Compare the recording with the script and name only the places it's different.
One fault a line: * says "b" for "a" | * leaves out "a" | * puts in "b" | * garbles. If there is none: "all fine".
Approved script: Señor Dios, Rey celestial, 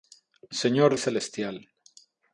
* leaves out "Dios Rey"